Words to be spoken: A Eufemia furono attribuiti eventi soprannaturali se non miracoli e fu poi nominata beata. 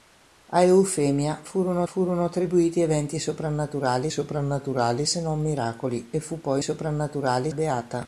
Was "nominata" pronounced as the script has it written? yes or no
no